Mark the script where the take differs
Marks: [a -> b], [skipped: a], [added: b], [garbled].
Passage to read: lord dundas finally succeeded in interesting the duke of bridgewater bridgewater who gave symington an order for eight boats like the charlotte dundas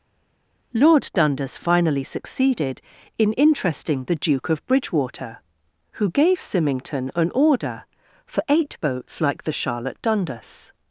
lord dundas finally succeeded in interesting the duke of bridgewater [skipped: bridgewater] who gave symington an order for eight boats like the charlotte dundas